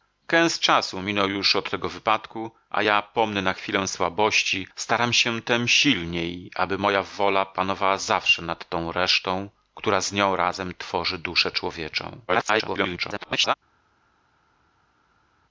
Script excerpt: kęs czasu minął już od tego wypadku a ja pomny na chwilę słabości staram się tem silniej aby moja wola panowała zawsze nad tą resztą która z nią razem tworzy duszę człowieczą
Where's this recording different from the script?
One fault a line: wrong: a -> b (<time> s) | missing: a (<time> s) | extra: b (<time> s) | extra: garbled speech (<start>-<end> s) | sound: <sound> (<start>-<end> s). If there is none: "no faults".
extra: garbled speech (12.3-13.5 s)